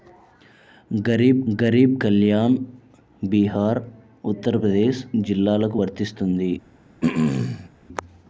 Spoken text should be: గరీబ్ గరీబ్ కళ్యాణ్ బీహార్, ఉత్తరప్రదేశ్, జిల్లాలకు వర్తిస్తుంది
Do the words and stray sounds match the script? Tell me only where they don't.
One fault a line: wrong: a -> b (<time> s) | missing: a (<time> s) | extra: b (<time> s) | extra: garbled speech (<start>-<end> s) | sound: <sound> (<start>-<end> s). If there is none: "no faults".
sound: throat clearing (7.0-7.7 s)